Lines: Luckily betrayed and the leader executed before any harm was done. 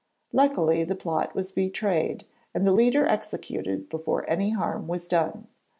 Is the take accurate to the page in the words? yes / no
no